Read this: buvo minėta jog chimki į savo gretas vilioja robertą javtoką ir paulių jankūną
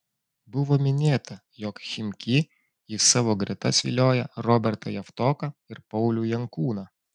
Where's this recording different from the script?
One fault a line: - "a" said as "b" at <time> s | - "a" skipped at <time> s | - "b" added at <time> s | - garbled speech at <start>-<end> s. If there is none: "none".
none